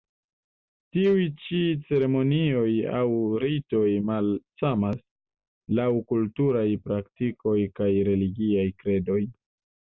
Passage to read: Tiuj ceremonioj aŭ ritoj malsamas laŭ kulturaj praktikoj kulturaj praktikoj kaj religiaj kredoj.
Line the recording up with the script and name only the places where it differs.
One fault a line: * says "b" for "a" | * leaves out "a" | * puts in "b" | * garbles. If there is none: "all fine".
* puts in "ĉi"
* leaves out "kulturaj praktikoj"